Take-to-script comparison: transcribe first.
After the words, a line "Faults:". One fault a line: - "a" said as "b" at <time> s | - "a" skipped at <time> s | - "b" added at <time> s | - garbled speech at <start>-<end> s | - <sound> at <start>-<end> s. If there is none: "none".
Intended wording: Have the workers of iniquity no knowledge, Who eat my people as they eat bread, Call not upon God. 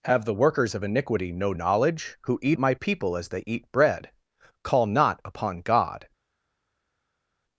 Have the workers of iniquity no knowledge, Who eat my people as they eat bread, Call not upon God.
Faults:
none